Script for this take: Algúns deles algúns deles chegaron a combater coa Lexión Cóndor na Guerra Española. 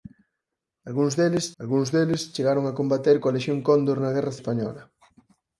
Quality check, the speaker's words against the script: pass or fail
pass